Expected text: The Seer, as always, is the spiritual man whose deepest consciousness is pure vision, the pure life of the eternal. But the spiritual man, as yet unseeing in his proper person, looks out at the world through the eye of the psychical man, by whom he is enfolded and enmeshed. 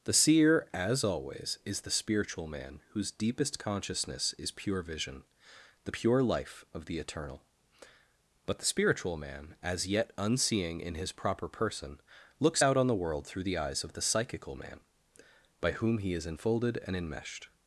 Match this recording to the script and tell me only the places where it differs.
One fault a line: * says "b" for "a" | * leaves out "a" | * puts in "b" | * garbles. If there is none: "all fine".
* says "on" for "at"
* says "eyes" for "eye"